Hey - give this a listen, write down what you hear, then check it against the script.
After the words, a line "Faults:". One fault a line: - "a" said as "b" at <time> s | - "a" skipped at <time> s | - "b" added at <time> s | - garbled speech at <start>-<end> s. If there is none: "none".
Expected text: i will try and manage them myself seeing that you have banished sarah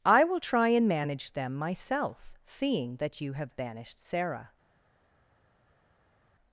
i will try and manage them myself seeing that you have banished sarah
Faults:
none